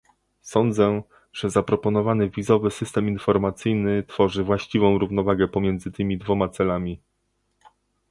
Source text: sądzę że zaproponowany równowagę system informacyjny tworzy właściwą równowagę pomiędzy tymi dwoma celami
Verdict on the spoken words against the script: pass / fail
fail